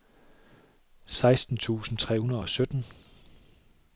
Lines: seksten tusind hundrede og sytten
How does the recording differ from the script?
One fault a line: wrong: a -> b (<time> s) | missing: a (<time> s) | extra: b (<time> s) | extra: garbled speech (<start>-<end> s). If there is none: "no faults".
extra: tre (2.0 s)